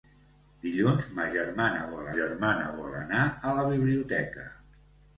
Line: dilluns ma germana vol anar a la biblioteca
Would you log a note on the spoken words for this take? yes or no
yes